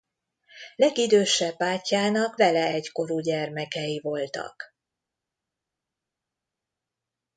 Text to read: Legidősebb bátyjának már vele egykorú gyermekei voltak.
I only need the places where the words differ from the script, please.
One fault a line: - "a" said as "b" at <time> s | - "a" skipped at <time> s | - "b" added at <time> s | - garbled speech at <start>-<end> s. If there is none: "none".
- "már" skipped at 2.4 s